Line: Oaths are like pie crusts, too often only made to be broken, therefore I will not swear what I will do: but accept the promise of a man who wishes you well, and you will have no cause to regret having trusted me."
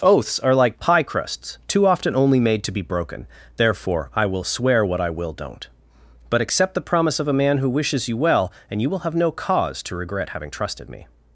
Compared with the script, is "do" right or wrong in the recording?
wrong